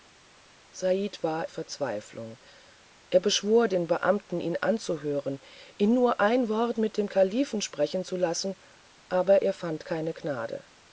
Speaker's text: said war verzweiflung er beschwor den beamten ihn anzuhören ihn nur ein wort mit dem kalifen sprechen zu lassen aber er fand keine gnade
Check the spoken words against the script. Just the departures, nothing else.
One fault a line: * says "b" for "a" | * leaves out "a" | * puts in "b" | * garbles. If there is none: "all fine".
all fine